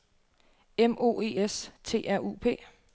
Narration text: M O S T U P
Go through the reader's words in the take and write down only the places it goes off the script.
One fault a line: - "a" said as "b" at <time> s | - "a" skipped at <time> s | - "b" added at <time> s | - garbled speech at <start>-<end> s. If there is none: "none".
- "E" added at 1.2 s
- "R" added at 2.1 s